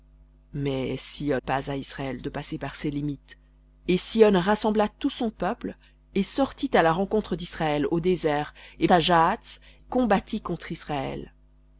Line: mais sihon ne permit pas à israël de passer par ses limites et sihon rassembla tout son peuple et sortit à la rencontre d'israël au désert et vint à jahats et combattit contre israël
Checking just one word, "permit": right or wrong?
wrong